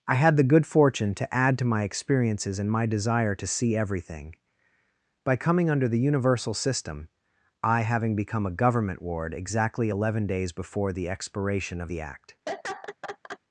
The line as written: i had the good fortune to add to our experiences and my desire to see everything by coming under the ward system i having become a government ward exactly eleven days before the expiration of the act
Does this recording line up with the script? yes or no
no